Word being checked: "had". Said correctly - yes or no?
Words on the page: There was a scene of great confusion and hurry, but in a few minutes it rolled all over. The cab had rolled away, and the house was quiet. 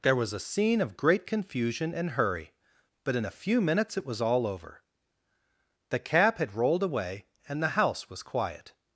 yes